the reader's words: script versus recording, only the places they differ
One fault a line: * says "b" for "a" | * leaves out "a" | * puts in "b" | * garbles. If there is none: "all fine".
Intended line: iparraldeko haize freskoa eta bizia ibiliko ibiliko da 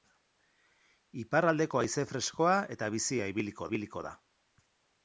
all fine